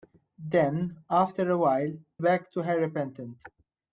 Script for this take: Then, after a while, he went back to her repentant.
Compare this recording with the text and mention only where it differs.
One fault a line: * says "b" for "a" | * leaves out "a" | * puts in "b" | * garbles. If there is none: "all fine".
* leaves out "he went"